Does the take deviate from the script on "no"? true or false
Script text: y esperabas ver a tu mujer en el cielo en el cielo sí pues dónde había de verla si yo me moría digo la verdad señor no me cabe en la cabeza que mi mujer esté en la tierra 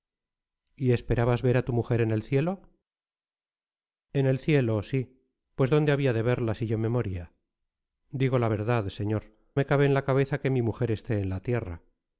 true